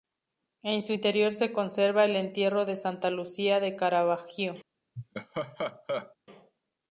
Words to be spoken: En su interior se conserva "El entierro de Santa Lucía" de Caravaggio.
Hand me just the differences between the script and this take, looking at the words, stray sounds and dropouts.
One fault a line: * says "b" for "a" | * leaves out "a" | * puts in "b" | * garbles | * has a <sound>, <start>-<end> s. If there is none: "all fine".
* has a laugh, 5.0-6.2 s